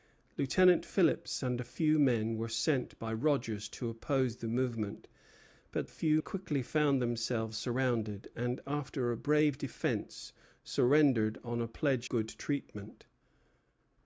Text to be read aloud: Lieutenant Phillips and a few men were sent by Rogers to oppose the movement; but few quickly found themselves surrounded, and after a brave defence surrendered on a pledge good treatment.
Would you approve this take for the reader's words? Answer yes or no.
yes